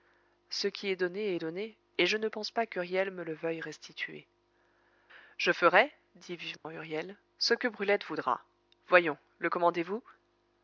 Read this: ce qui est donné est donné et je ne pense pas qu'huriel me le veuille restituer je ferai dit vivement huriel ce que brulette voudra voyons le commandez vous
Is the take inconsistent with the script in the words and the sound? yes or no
yes